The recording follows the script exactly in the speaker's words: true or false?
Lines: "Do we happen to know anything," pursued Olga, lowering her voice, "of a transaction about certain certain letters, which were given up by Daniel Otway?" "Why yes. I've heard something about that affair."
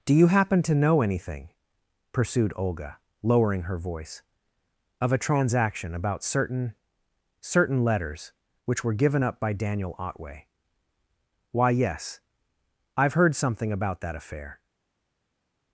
false